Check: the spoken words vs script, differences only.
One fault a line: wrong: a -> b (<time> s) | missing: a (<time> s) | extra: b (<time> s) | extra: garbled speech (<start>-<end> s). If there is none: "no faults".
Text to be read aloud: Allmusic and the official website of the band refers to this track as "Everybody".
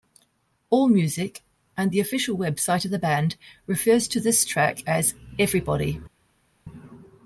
no faults